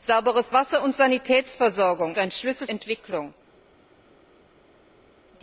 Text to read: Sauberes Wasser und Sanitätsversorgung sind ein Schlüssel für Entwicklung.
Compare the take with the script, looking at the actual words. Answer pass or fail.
fail